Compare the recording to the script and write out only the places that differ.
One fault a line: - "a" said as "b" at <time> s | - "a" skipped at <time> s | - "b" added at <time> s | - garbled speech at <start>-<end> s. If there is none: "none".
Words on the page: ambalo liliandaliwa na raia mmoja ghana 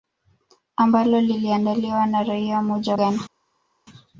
none